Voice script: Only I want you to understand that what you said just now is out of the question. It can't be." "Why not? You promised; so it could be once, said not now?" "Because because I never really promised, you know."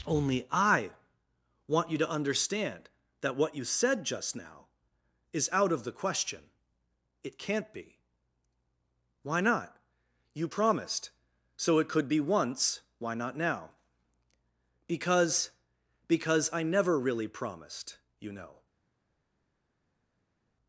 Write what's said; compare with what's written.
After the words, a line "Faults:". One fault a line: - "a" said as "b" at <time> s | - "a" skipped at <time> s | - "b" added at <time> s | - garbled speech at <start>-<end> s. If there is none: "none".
Only I want you to understand that what you said just now is out of the question. It can't be." "Why not? You promised; so it could be once, why not now?" "Because because I never really promised, you know."
Faults:
- "said" said as "why" at 13.0 s